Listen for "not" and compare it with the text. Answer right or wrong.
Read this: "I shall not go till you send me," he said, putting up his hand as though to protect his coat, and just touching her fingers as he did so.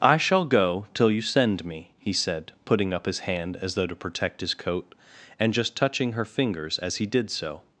wrong